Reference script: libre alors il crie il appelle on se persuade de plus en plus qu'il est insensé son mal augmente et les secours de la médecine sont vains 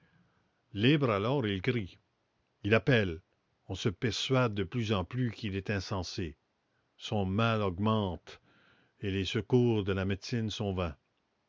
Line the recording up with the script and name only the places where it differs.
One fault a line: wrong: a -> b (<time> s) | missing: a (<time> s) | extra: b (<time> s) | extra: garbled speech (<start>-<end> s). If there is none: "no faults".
no faults